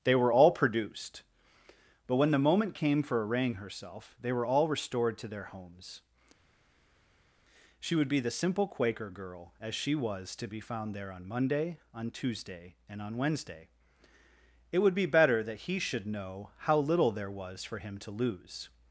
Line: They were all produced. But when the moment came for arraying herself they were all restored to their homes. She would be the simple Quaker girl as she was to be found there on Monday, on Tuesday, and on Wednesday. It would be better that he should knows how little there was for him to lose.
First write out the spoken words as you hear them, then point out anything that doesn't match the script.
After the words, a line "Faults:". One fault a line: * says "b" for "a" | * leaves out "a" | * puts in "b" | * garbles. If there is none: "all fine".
They were all produced. But when the moment came for arraying herself they were all restored to their homes. She would be the simple Quaker girl as she was to be found there on Monday, on Tuesday, and on Wednesday. It would be better that he should know how little there was for him to lose.
Faults:
* says "know" for "knows"